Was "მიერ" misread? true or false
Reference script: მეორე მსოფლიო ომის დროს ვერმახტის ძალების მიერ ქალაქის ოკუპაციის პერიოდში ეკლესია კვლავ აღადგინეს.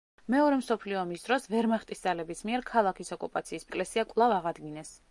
false